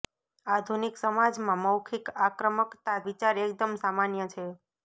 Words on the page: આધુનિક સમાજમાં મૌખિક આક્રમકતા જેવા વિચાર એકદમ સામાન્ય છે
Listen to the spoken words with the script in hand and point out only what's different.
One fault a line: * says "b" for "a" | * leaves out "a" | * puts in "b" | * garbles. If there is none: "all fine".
* leaves out "જેવા"